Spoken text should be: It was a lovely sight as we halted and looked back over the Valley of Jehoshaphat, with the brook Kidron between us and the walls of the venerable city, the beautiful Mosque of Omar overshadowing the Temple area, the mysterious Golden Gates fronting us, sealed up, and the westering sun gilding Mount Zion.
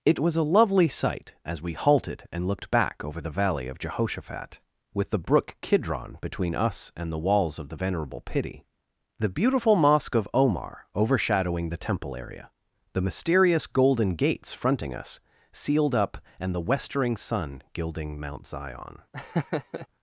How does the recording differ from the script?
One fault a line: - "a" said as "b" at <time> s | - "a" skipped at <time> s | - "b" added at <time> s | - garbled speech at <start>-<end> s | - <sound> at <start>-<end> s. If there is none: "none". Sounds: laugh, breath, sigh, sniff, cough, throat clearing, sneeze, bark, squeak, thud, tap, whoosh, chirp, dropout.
- "city" said as "pity" at 8.2 s
- laugh at 19.1-19.9 s